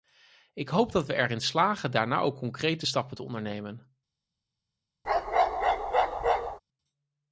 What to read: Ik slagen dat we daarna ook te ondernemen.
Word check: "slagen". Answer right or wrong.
wrong